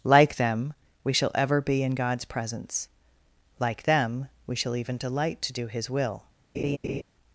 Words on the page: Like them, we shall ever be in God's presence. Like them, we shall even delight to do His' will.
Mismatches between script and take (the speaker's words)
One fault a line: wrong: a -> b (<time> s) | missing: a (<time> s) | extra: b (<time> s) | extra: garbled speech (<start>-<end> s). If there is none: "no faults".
no faults